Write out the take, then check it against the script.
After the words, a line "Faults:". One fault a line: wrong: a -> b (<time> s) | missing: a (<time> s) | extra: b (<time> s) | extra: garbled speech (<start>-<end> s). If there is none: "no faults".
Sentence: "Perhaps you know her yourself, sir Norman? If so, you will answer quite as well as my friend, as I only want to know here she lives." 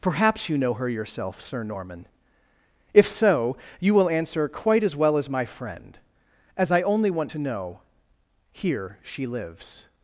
"Perhaps you know her yourself, sir Norman? If so, you will answer quite as well as my friend, as I only want to know here she lives."
Faults:
no faults